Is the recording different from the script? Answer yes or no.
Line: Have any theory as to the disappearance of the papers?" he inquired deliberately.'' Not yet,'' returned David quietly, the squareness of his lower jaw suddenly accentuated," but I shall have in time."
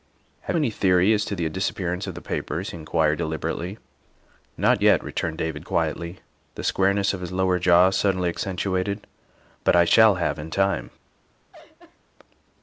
no